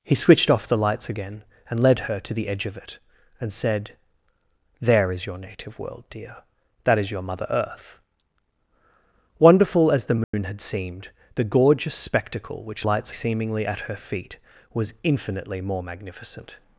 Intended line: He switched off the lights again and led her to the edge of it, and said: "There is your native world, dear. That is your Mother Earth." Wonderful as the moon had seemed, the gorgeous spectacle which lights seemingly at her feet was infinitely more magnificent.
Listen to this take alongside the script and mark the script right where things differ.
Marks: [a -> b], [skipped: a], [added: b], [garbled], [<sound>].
He switched off the lights again and led her to the edge of it, and said: "There is your native world, dear. That is your Mother Earth." Wonderful as the moon [dropout] had seemed, the gorgeous spectacle which lights seemingly at her feet was infinitely more magnificent.